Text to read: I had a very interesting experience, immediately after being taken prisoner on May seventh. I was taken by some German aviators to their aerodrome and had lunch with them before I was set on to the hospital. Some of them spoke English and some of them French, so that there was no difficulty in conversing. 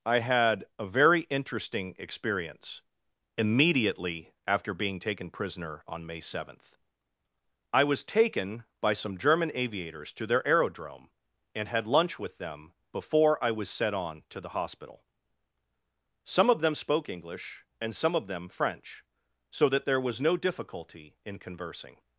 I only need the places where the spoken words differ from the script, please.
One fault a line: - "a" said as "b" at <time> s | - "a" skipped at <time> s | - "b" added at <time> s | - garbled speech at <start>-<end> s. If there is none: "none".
none